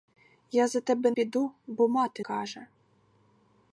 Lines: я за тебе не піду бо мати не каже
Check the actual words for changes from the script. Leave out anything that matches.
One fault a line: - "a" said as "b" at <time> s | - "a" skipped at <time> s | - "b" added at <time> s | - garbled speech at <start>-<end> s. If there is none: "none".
- "не" skipped at 1.1 s
- "не" skipped at 2.2 s